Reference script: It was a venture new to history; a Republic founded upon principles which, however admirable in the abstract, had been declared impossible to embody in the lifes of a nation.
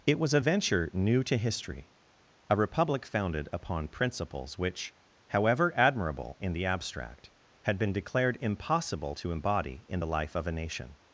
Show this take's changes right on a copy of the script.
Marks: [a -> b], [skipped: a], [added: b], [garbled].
It was a venture new to history; a Republic founded upon principles which, however admirable in the abstract, had been declared impossible to embody in the [lifes -> life] of a nation.